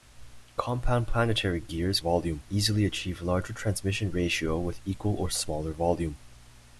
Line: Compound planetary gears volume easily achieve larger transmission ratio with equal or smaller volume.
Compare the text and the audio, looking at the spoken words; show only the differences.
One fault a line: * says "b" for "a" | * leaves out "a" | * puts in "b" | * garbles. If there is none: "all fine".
all fine